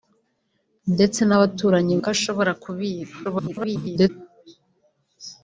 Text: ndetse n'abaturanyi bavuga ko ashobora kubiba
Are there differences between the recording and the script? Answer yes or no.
yes